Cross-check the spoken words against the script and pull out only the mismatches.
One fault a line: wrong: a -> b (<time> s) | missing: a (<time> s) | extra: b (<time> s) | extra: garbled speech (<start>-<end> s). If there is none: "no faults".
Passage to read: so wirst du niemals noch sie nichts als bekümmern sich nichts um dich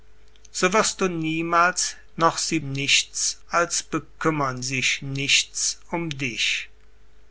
no faults